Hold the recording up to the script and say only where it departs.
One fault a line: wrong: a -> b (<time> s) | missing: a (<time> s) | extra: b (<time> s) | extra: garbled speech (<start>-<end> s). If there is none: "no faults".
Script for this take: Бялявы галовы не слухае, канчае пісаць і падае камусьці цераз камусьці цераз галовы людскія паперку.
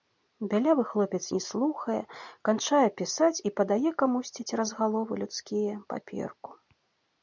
wrong: галовы -> хлопец (0.9 s)
missing: камусьці цераз (4.8 s)